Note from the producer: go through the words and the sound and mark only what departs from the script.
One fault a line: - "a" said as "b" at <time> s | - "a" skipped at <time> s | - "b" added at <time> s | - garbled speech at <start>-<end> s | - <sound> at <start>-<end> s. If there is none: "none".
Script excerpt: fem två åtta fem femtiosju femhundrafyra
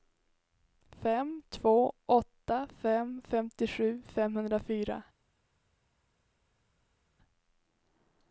none